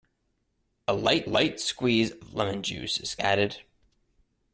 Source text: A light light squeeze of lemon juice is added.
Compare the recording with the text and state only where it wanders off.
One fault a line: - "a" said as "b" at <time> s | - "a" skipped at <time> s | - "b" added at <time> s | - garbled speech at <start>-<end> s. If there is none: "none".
none